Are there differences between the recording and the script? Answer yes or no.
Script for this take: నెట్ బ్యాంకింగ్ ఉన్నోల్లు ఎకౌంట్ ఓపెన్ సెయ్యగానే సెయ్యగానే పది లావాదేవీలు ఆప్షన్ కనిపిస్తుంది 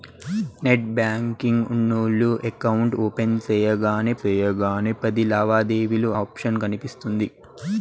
no